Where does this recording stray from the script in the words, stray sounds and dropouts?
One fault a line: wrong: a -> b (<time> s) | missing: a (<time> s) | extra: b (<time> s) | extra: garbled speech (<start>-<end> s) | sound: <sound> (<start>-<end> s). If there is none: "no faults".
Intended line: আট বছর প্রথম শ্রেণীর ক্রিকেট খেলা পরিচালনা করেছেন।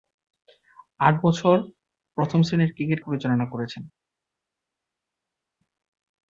missing: খেলা (3.0 s)